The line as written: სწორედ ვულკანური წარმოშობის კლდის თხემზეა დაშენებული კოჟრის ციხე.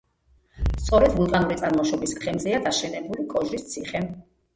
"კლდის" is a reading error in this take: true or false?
true